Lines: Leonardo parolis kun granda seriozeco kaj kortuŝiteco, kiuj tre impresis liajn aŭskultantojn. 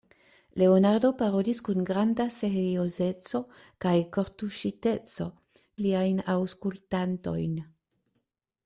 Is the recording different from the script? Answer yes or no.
yes